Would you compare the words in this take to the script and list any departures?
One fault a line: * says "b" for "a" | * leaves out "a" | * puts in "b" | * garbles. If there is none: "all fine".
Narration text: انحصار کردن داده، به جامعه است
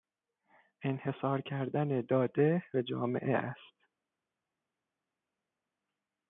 all fine